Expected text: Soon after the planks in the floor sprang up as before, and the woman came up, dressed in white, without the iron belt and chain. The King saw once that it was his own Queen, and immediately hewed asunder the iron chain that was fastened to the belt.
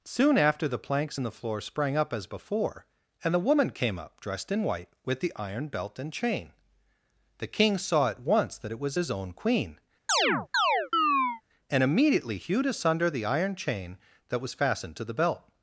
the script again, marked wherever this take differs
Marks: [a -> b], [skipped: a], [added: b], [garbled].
Soon after the planks in the floor sprang up as before, and the woman came up, dressed in white, [without -> with] the iron belt and chain. The King saw [added: at] once that it was his own Queen, and immediately hewed asunder the iron chain that was fastened to the belt.